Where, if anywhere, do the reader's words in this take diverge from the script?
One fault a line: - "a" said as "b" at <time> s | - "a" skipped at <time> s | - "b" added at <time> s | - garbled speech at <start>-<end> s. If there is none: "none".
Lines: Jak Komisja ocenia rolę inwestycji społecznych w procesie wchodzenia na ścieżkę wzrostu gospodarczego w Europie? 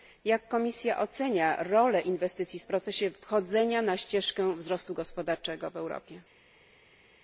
- "społecznych" skipped at 2.6 s